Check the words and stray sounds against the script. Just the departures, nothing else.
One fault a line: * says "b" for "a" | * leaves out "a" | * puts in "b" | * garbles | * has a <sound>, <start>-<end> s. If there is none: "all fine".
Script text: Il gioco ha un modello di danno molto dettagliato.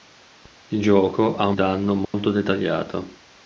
* leaves out "modello di"
* has a dropout, 2.1-2.1 s